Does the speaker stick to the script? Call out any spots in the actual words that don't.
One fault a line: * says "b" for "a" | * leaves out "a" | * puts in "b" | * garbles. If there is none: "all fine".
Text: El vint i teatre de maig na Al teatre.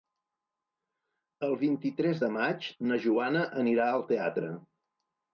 * says "tres" for "teatre"
* puts in "Joana anirà"